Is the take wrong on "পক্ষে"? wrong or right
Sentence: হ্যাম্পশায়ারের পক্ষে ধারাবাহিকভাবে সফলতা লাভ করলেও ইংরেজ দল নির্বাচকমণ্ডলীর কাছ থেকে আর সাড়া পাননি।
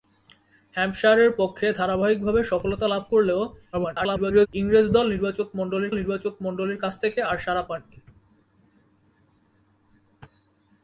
right